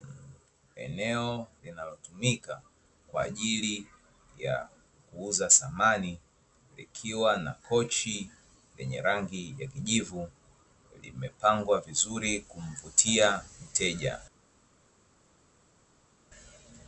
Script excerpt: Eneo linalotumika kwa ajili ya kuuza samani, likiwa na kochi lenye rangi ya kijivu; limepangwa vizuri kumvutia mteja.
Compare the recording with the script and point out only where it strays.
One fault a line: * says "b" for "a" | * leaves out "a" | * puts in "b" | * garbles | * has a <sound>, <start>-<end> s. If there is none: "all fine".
all fine